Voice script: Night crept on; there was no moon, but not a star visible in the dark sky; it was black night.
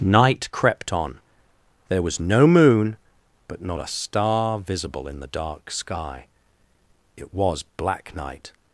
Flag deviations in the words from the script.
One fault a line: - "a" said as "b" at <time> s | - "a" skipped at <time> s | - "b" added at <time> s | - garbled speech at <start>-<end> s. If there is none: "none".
none